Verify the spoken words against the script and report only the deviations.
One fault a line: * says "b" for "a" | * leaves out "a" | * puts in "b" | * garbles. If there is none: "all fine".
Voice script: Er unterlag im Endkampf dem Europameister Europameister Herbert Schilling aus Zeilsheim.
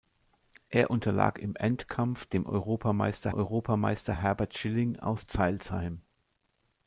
all fine